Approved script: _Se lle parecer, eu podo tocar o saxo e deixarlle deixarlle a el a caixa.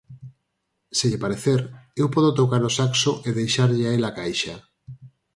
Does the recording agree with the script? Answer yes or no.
no